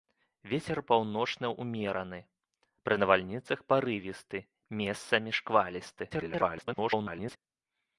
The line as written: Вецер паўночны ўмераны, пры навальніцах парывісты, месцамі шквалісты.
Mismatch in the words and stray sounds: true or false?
true